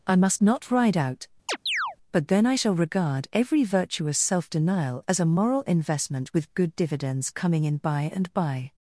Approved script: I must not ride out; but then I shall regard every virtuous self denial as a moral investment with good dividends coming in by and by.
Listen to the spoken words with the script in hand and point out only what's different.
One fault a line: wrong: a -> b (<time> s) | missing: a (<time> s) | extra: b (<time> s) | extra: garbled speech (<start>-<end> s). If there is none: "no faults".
no faults